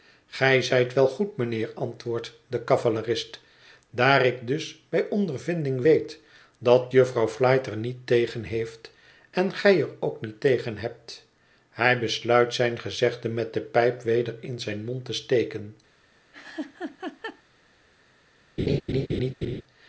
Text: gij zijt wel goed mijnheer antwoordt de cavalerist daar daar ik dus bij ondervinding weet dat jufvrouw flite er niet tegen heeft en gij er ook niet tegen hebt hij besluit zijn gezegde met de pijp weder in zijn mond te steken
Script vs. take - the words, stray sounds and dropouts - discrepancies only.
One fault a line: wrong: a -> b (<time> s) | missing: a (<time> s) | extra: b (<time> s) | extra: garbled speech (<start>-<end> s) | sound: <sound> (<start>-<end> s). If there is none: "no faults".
missing: daar (4.2 s)
sound: laugh (16.3-17.4 s)
sound: laugh (18.6-19.6 s)